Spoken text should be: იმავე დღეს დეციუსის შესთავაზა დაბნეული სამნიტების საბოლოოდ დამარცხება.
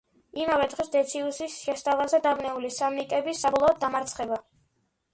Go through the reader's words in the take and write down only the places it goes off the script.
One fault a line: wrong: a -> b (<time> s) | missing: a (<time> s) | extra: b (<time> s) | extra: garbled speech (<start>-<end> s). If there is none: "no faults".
no faults